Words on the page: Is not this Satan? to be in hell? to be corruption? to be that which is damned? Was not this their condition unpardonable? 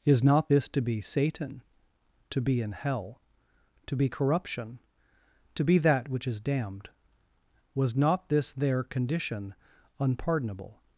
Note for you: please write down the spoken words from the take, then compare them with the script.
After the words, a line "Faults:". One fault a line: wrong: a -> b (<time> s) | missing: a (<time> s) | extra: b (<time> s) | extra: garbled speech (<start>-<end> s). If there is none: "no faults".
Is not this to be Satan? to be in hell? to be corruption? to be that which is damned? Was not this their condition unpardonable?
Faults:
extra: to be (0.7 s)